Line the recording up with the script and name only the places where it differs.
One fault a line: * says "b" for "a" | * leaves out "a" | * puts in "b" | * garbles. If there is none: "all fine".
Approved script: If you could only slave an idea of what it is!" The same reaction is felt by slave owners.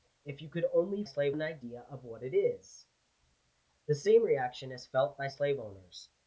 all fine